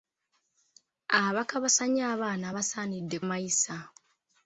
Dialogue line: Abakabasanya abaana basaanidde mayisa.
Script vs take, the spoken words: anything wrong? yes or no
no